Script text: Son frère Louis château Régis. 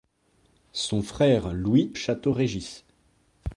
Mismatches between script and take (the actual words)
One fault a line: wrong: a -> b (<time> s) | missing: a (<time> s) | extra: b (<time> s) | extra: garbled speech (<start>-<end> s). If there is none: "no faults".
no faults